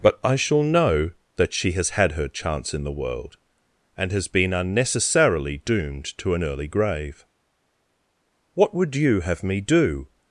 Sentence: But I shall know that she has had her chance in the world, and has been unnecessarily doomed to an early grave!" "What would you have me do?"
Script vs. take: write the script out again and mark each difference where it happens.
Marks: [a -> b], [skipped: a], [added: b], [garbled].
But I shall know that she has had her chance in the world, and has been unnecessarily doomed to an early grave!" "What would you have me do?"